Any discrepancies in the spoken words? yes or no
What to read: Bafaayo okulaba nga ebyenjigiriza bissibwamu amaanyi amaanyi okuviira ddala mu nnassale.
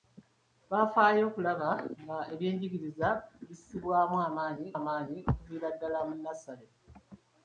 no